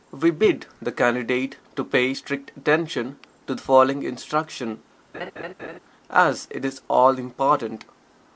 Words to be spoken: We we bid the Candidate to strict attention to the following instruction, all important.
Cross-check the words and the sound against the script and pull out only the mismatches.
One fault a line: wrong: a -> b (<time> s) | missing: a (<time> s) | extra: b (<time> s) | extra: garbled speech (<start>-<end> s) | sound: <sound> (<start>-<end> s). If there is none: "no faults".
missing: we (0.3 s)
extra: pay (1.8 s)
sound: laugh (5.1-5.8 s)
extra: as it is (6.1 s)